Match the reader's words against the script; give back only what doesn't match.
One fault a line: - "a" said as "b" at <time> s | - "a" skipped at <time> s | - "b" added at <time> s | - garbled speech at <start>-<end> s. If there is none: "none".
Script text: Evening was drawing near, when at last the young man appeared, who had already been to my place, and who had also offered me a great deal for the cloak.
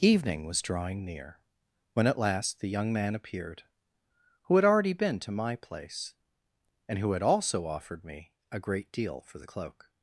none